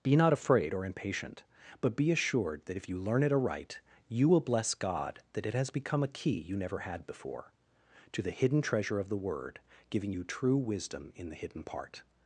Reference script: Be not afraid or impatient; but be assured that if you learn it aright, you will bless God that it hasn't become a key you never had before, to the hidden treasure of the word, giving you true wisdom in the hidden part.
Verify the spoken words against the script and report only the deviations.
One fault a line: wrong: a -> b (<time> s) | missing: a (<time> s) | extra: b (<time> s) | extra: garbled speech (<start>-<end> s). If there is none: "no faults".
wrong: hasn't -> has (5.5 s)